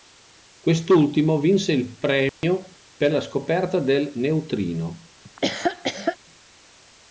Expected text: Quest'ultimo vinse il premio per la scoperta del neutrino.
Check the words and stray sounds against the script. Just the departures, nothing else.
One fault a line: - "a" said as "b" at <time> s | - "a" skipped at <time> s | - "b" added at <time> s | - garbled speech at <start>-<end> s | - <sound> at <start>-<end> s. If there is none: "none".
- dropout at 2.3-2.4 s
- laugh at 5.2-6.2 s